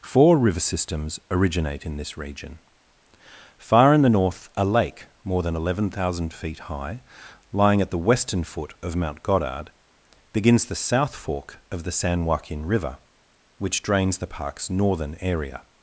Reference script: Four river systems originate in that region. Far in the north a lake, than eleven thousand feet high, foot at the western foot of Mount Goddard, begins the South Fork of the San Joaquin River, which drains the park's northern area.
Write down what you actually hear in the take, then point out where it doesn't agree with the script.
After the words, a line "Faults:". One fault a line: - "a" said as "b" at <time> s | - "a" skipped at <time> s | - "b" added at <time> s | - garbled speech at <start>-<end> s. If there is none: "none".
Four river systems originate in this region. Far in the north a lake, more than eleven thousand feet high, lying at the western foot of Mount Goddard, begins the South Fork of the San Joaquin River, which drains the park's northern area.
Faults:
- "that" said as "this" at 1.9 s
- "more" added at 5.2 s
- "foot" said as "lying" at 7.5 s